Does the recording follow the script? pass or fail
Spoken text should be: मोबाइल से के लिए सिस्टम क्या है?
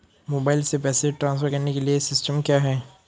fail